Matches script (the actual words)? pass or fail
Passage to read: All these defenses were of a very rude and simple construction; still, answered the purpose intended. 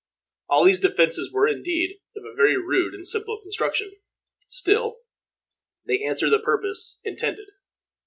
fail